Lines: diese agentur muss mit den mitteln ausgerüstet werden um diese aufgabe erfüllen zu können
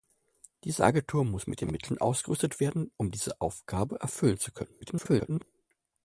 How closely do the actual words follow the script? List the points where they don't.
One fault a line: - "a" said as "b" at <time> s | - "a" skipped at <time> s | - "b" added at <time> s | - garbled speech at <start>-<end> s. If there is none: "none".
- garbled speech at 4.8-5.4 s